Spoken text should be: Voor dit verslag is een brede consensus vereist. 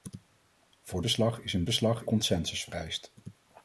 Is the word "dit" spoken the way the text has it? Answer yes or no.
no